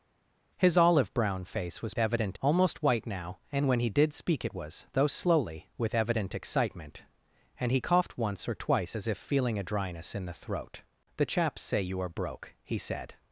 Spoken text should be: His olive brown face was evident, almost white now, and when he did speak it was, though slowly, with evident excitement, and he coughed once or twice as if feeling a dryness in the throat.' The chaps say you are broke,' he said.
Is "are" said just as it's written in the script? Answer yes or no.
yes